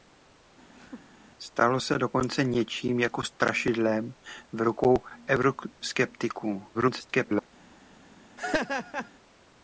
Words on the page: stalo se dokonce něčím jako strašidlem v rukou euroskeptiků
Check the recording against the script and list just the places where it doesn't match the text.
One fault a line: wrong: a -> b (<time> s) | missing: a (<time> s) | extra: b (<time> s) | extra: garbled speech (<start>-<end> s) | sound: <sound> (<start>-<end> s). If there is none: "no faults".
sound: laugh (0.8-1.2 s)
extra: garbled speech (6.7-7.5 s)
sound: laugh (8.4-9.1 s)